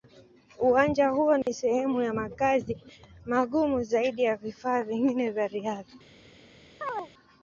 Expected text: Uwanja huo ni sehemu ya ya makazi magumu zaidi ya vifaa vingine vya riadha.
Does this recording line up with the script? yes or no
no